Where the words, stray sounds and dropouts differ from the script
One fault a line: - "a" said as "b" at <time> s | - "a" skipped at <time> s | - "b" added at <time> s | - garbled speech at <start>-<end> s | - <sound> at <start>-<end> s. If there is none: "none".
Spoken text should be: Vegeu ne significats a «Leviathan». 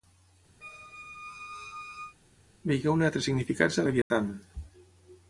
- squeak at 0.6-2.2 s
- "altres" added at 3.1 s
- dropout at 4.0-4.1 s